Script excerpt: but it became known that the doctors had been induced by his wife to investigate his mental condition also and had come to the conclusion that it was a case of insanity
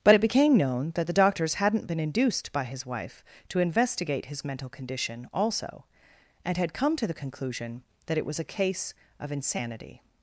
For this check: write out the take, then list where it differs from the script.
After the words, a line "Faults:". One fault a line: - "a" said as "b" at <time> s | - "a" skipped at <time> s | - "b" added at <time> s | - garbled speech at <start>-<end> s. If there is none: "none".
but it became known that the doctors hadn't been induced by his wife to investigate his mental condition also and had come to the conclusion that it was a case of insanity
Faults:
- "had" said as "hadn't" at 1.5 s